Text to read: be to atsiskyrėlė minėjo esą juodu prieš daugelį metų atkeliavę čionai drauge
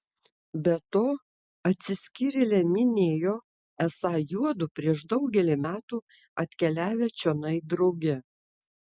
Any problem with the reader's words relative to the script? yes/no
no